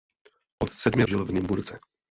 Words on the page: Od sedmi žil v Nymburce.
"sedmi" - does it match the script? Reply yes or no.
yes